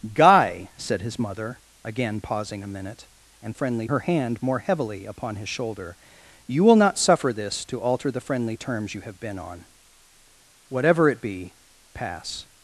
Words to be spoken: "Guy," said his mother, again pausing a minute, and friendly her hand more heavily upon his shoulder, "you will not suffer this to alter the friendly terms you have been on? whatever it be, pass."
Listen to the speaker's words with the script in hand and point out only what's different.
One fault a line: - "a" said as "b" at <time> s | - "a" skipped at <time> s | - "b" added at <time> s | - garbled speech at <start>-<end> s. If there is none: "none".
none